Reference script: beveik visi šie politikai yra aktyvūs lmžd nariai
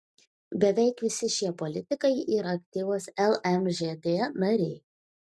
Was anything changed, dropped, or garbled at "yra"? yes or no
no